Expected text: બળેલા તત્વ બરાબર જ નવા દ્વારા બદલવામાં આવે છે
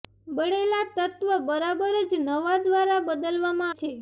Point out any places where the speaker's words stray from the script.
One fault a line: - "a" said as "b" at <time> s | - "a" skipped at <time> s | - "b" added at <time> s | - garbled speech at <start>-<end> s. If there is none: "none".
- "આવે" skipped at 3.8 s